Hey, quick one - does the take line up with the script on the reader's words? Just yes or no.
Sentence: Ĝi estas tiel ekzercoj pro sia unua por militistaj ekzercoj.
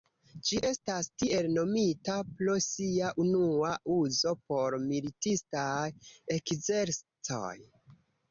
no